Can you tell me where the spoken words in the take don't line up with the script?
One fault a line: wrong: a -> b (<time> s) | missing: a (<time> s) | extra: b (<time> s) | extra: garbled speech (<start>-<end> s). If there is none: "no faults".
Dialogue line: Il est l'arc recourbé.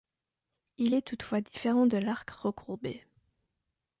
extra: toutefois différent de (1.0 s)